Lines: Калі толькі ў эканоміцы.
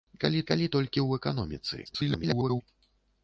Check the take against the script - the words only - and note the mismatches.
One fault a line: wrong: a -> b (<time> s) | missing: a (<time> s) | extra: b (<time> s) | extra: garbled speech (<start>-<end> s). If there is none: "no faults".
extra: калі (0.5 s)
extra: garbled speech (1.8-2.6 s)